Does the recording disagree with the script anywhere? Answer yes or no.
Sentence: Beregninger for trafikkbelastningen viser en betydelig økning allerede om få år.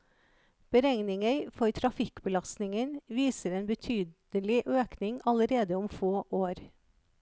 no